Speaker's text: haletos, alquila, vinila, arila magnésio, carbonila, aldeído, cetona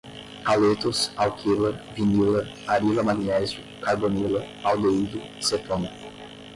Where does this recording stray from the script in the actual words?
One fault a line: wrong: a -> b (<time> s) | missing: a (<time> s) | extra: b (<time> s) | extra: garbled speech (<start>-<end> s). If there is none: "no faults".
no faults